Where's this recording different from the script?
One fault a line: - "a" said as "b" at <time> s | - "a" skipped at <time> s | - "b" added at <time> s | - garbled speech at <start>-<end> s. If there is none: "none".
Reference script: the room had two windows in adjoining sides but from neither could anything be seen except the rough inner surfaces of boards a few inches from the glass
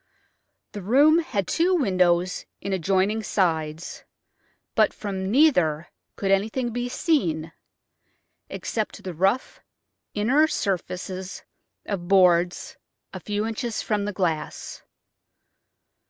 none